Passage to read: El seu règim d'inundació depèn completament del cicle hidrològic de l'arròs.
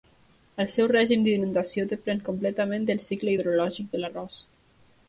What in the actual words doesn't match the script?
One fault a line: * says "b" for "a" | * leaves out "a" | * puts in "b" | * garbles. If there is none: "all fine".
all fine